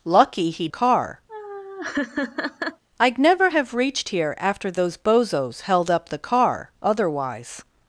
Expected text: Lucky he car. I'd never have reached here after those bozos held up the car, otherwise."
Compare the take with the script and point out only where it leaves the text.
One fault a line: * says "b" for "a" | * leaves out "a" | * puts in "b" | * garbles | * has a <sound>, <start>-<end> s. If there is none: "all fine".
* has a laugh, 1.3-2.8 s